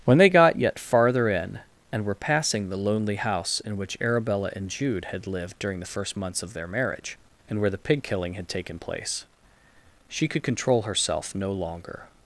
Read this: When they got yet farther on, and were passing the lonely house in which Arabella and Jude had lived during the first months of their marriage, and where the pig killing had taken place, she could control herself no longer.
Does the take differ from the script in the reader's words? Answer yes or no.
yes